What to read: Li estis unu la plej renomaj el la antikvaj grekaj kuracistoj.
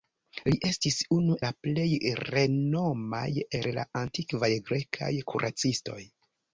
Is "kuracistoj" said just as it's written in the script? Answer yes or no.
yes